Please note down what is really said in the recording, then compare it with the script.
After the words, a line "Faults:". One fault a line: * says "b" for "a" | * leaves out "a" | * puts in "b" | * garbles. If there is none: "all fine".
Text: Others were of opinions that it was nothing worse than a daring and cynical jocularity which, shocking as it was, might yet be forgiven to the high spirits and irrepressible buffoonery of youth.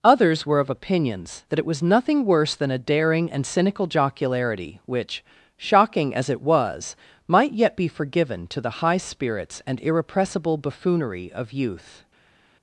Others were of opinions that it was nothing worse than a daring and cynical jocularity which, shocking as it was, might yet be forgiven to the high spirits and irrepressible buffoonery of youth.
Faults:
all fine